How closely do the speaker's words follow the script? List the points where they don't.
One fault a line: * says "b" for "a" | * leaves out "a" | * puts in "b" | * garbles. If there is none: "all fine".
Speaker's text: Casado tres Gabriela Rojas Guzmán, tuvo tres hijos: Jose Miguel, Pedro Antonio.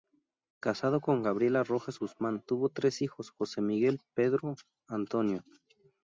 * says "con" for "tres"